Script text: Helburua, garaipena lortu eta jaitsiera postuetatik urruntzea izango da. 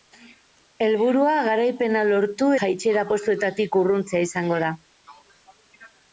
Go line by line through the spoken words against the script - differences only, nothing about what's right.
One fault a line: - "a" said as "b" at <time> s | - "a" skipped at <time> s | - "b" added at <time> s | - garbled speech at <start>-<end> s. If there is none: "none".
- "eta" skipped at 2.5 s